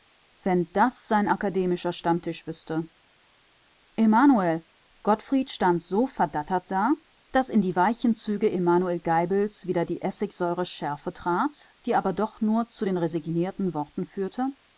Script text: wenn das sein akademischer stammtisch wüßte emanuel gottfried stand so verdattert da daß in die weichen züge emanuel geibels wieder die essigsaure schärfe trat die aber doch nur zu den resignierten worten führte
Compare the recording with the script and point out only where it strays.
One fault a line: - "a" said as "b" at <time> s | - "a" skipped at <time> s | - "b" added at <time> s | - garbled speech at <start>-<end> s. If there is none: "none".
none